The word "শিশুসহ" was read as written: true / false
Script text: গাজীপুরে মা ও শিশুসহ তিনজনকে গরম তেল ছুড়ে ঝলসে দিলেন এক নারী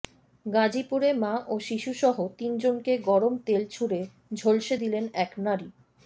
true